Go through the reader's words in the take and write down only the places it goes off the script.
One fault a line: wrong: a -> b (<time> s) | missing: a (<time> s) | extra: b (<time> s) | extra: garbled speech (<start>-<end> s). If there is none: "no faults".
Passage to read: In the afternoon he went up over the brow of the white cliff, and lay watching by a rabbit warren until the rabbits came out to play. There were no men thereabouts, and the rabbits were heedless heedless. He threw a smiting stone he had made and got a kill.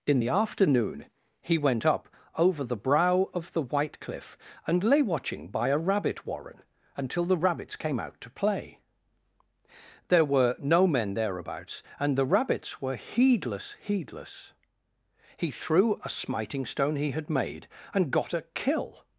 no faults